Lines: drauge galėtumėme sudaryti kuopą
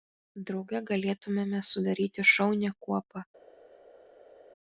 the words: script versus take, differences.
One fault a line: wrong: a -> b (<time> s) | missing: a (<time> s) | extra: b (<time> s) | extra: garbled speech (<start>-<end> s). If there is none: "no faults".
extra: šaunią (2.3 s)